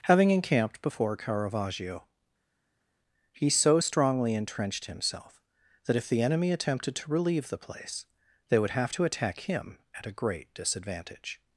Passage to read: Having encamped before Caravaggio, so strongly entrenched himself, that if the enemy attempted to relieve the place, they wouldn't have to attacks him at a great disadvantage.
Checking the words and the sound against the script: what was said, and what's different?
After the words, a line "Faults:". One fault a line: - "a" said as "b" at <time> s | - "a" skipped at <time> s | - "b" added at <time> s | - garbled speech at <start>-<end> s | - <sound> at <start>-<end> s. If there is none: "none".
Having encamped before Caravaggio, he so strongly entrenched himself, that if the enemy attempted to relieve the place, they would have to attack him at a great disadvantage.
Faults:
- "he" added at 3.3 s
- "wouldn't" said as "would" at 8.6 s
- "attacks" said as "attack" at 9.0 s